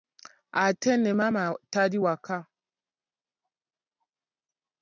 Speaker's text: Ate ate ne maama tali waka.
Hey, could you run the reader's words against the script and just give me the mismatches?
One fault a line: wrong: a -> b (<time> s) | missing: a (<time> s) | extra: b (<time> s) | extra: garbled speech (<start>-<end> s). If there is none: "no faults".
missing: ate (0.9 s)